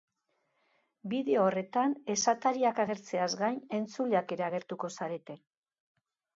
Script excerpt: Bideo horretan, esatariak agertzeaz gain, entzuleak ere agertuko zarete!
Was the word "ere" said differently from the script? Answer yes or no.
no